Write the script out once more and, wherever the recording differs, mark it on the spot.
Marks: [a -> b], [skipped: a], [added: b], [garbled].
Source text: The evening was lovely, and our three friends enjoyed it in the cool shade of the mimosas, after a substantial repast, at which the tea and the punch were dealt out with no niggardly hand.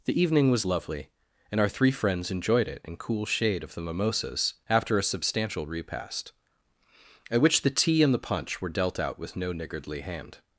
The evening was lovely, and our three friends enjoyed it in [skipped: the] cool shade of the mimosas, after a substantial repast, at which the tea and the punch were dealt out with no niggardly hand.